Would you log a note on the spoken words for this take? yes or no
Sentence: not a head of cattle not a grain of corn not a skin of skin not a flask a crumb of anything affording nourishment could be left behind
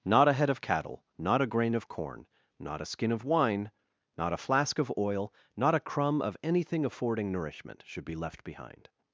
yes